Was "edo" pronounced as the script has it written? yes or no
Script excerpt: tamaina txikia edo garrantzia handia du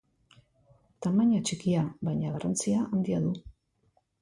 no